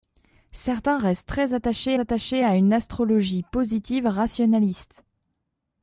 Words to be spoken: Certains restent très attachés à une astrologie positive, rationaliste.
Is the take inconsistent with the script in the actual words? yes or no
yes